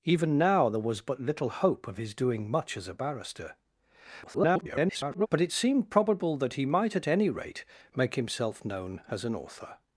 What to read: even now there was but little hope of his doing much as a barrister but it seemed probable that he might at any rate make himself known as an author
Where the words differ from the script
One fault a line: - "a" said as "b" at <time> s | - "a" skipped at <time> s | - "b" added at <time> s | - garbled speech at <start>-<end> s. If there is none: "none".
- garbled speech at 4.2-5.3 s